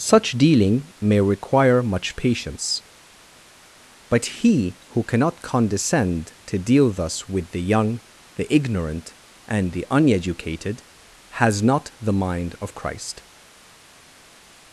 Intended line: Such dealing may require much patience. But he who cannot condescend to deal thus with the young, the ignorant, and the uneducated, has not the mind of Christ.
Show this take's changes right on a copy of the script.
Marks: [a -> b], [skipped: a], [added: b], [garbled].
Such dealing may require much patience. But he who cannot condescend to deal thus with the young, the ignorant, and the uneducated, has not the mind of Christ.